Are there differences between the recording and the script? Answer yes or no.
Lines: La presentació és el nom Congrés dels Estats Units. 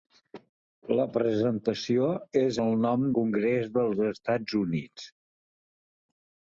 no